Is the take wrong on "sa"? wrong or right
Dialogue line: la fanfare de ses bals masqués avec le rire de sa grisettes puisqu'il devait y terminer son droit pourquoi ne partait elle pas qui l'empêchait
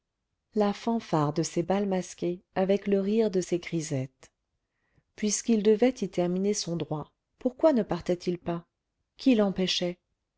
wrong